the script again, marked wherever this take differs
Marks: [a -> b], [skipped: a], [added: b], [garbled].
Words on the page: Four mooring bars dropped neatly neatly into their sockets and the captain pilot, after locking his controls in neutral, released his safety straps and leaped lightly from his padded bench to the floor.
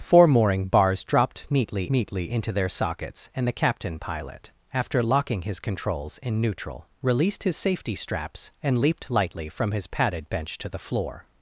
Four mooring bars dropped neatly neatly into their sockets and the captain pilot, after locking his controls in neutral, released his safety straps and leaped lightly from his padded bench to the floor.